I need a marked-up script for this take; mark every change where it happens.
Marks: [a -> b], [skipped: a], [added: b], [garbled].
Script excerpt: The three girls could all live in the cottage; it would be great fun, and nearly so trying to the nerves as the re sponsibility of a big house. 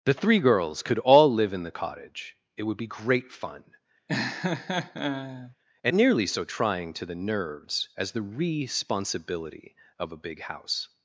The three girls could all live in the cottage; it would be great fun, and nearly so trying to the nerves as the re sponsibility of a big house.